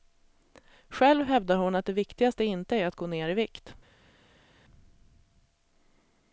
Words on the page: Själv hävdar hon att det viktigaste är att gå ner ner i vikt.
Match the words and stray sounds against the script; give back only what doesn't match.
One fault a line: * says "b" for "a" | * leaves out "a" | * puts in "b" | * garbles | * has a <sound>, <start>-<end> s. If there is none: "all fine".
* puts in "inte"
* leaves out "ner"